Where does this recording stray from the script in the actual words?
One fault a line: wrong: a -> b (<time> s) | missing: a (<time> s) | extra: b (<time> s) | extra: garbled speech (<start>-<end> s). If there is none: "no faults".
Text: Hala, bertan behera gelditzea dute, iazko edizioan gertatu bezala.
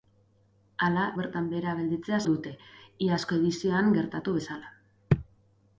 no faults